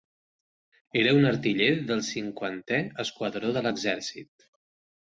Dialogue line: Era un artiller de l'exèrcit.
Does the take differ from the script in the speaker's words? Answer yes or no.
yes